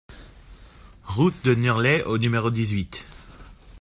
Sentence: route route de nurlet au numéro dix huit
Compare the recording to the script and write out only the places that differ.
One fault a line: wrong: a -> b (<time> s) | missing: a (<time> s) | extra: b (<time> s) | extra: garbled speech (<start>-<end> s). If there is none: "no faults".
missing: route (1.4 s)